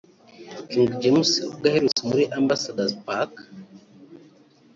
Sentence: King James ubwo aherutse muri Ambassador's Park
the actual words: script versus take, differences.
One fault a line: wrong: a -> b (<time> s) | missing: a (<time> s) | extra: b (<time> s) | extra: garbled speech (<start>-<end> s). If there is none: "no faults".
no faults